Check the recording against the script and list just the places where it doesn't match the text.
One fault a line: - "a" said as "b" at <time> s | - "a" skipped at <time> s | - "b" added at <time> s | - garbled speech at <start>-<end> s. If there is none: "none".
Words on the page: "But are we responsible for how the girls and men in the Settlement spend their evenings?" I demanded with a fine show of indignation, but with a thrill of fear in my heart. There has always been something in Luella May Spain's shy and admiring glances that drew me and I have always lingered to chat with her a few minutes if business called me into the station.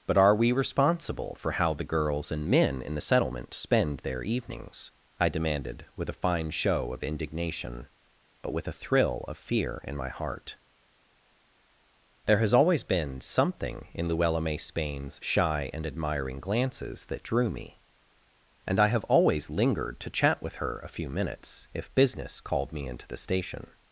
none